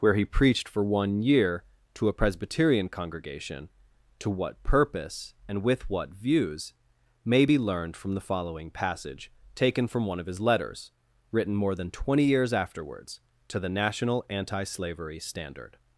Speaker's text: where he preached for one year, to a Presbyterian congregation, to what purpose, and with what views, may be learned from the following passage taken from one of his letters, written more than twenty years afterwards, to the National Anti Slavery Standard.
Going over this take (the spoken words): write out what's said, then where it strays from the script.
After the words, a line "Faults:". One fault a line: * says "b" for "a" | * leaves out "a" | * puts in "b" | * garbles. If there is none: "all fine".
where he preached for one year, to a Presbyterian congregation, to what purpose, and with what views, may be learned from the following passage taken from one of his letters, written more than twenty years afterwards, to the National Anti Slavery Standard.
Faults:
all fine